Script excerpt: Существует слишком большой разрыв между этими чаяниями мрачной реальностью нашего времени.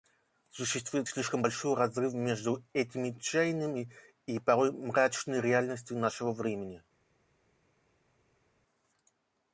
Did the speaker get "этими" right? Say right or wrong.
right